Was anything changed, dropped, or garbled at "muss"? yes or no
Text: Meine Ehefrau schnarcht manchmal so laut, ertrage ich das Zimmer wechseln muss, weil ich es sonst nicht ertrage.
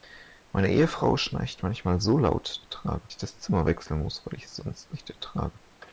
no